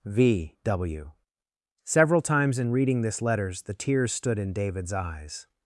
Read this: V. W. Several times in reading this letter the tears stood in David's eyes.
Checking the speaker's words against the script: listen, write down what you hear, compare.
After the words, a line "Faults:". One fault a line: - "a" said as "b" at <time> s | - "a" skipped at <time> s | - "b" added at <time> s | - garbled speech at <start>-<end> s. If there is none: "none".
V. W. Several times in reading this letters the tears stood in David's eyes.
Faults:
- "letter" said as "letters" at 3.2 s